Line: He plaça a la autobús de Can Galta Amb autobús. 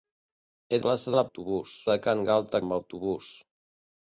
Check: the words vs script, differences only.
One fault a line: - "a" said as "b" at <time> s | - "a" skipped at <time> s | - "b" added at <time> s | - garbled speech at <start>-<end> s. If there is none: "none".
none